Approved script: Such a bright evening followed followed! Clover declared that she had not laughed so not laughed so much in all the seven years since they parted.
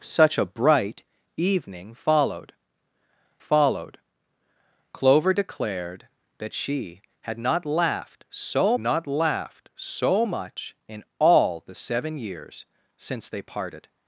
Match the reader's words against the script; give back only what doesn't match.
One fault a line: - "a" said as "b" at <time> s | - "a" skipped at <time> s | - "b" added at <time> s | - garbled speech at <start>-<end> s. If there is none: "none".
none